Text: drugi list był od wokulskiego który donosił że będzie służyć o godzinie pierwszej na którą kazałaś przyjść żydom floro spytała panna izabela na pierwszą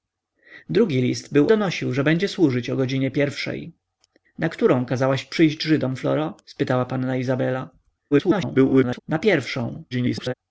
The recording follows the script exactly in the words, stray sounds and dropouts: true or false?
false